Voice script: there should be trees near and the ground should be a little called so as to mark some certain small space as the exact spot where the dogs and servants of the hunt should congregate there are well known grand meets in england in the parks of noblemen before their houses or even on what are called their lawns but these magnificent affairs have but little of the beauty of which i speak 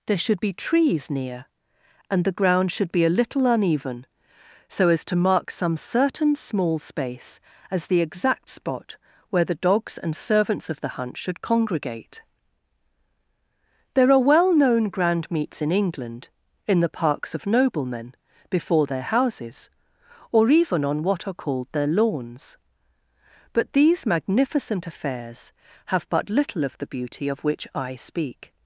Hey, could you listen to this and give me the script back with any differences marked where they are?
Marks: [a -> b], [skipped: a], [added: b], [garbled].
there should be trees near and the ground should be a little [called -> uneven] so as to mark some certain small space as the exact spot where the dogs and servants of the hunt should congregate there are well known grand meets in england in the parks of noblemen before their houses or even on what are called their lawns but these magnificent affairs have but little of the beauty of which i speak